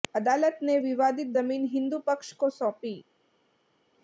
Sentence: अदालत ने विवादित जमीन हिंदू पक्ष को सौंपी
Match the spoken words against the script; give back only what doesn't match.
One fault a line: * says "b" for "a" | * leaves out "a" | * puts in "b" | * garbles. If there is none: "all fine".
all fine